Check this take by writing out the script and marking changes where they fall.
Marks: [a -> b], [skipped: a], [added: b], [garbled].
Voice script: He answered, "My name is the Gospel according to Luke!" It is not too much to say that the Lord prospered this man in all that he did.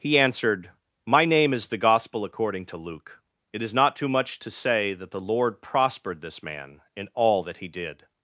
He answered, "My name is the Gospel according to Luke!" It is not too much to say that the Lord prospered this man in all that he did.